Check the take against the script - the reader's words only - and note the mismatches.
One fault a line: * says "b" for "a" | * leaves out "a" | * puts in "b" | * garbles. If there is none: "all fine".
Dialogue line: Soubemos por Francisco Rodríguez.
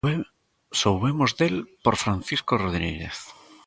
* puts in "del"